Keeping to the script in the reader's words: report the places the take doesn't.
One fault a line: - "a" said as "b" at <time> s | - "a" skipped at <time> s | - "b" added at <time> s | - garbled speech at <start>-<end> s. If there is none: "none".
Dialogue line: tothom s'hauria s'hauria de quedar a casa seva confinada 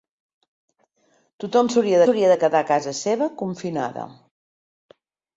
none